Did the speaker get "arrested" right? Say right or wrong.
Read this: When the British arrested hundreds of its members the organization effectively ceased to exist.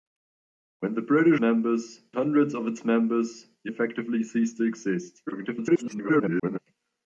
wrong